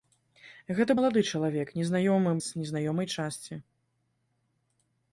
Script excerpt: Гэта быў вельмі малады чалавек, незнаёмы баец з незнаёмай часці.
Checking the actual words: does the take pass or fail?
fail